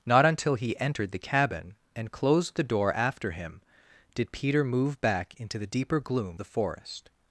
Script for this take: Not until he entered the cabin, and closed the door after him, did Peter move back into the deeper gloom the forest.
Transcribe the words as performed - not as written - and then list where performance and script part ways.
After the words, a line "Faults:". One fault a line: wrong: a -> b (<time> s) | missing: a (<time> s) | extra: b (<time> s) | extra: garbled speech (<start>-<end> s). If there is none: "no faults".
Not until he entered the cabin, and closed the door after him, did Peter move back into the deeper gloom the forest.
Faults:
no faults